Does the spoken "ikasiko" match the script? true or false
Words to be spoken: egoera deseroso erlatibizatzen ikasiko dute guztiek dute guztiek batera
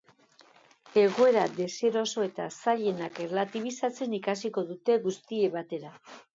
true